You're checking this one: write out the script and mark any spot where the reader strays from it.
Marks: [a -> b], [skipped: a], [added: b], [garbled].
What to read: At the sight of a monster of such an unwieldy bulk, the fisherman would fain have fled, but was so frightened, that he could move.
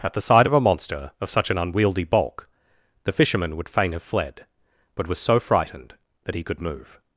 At the sight of a monster of such an unwieldy bulk, the fisherman would fain have fled, but was so frightened, that he could move.